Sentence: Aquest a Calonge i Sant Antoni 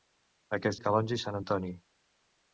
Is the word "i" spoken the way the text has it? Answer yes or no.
yes